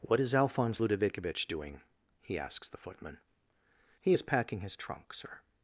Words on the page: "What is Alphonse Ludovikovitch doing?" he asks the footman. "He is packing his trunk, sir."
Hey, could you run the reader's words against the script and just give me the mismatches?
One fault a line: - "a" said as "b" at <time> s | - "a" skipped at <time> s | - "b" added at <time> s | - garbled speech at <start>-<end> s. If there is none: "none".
none